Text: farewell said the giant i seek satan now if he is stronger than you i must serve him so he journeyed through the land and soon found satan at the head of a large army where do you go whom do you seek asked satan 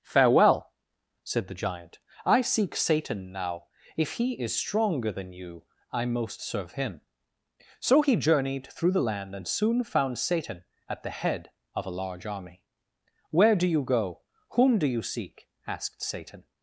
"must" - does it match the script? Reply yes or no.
no